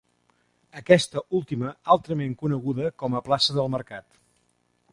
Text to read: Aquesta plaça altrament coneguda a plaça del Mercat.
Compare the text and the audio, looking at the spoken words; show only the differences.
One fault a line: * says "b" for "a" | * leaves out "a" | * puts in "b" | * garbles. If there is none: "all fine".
* says "última" for "plaça"
* puts in "com"